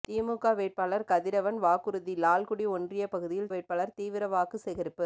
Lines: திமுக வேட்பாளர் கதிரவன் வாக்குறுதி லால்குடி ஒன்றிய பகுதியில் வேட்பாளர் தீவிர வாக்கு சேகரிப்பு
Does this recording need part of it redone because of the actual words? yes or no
no